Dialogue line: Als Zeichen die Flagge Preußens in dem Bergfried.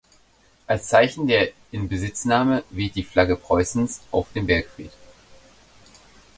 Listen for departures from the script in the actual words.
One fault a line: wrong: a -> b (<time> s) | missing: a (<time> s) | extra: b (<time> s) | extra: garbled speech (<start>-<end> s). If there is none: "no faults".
extra: der Inbesitznahme weht (1.3 s)
wrong: in -> auf (4.1 s)